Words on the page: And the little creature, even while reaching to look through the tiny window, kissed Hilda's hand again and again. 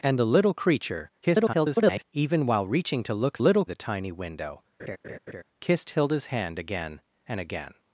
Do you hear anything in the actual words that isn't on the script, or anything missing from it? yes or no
yes